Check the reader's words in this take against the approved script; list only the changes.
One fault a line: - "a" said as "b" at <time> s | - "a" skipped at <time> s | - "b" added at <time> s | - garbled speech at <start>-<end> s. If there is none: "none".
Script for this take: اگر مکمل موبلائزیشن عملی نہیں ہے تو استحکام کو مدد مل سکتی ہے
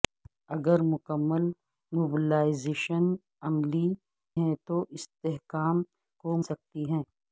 - "نہیں" skipped at 3.9 s
- "مدد مل" skipped at 6.4 s